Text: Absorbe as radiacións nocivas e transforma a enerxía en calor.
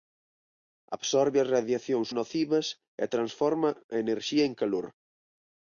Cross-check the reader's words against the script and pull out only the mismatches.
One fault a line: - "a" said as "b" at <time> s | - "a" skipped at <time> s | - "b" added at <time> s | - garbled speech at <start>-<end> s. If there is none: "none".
none